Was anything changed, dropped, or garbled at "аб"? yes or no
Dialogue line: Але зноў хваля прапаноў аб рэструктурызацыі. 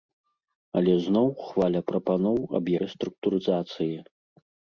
no